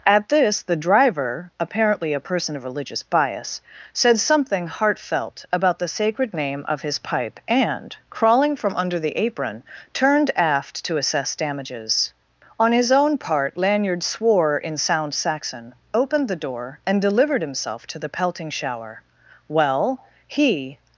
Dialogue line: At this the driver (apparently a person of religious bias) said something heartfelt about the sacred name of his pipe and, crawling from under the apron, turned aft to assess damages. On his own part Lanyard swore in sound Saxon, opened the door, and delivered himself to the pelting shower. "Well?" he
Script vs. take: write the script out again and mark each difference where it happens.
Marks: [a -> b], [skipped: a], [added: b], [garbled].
At this the driver (apparently a person of religious bias) said something heartfelt about the sacred name of his pipe and, crawling from under the apron, turned aft to assess damages. On his own part Lanyard swore in sound Saxon, opened the door, and delivered himself to the pelting shower. "Well?" he